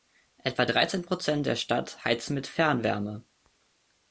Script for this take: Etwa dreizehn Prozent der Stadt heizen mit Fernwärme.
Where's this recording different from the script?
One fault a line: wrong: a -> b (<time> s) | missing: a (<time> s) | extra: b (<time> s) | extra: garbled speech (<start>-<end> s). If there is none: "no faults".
no faults